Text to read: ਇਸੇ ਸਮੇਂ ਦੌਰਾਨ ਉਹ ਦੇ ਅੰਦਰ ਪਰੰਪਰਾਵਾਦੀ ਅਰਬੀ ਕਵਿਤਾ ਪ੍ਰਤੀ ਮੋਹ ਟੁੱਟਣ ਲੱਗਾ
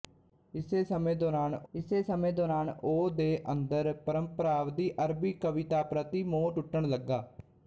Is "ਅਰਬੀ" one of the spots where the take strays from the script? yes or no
no